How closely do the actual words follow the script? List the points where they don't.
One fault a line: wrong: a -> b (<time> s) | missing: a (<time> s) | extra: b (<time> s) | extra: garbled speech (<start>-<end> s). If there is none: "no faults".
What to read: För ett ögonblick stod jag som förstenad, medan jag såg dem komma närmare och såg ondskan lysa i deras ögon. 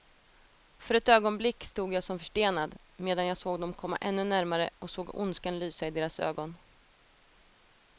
extra: ännu (4.0 s)